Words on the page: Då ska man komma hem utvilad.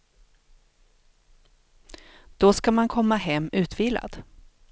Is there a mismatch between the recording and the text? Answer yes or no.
no